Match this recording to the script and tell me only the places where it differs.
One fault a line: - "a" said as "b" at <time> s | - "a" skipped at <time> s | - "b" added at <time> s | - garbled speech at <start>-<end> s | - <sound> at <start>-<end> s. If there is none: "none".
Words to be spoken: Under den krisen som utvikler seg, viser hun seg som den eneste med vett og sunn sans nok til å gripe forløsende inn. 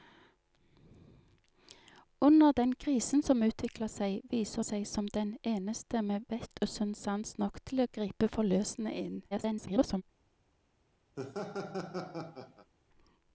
- "hun" skipped at 4.6 s
- garbled speech at 9.3-10.0 s
- laugh at 11.2-12.7 s